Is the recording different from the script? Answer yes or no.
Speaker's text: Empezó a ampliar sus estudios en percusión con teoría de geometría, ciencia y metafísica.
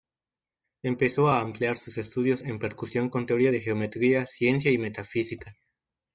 no